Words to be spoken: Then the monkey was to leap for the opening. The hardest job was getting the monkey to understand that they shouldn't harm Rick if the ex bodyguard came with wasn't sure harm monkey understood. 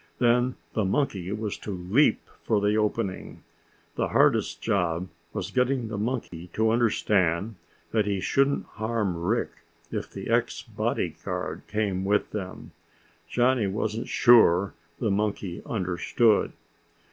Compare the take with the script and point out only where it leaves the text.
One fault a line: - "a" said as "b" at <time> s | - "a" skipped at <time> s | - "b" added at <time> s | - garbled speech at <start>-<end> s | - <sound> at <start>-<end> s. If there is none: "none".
- dropout at 6.3-6.3 s
- "they" said as "he" at 8.1 s
- "them Johnny" added at 12.3 s
- "harm" said as "the" at 15.0 s